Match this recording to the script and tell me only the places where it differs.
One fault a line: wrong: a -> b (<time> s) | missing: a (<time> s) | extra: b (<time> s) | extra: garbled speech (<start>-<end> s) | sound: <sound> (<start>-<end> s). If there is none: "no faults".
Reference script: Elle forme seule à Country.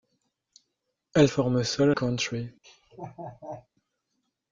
sound: laugh (2.6-3.7 s)